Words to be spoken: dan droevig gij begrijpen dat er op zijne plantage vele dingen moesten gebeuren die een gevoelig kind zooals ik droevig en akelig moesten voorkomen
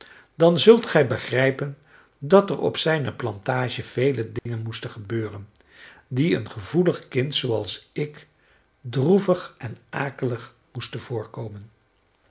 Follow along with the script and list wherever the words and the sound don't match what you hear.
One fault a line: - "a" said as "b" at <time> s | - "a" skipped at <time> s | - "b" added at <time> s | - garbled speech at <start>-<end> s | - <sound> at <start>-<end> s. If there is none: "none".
- "droevig" said as "zult" at 0.6 s
- dropout at 4.4-4.5 s